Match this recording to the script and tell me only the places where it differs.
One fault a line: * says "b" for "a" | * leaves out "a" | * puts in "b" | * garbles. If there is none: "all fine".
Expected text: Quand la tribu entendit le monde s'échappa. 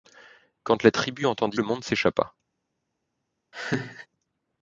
all fine